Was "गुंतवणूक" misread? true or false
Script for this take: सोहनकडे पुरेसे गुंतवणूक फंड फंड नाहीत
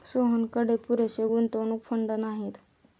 false